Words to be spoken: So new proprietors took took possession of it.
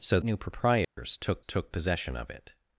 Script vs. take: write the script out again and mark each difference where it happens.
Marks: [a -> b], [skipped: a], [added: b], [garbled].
So new proprietors took took possession of it.